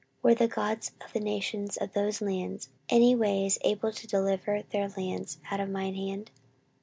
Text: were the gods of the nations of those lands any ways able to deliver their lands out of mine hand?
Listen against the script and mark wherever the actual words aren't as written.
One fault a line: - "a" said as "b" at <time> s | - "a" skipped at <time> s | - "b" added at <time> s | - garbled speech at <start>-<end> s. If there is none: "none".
none